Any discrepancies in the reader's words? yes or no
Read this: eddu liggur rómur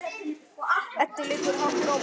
yes